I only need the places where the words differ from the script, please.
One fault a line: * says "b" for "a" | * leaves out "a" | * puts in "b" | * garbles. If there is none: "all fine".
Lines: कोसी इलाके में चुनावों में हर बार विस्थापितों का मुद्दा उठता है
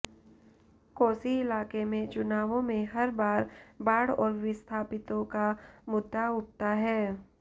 * puts in "बाढ़ और"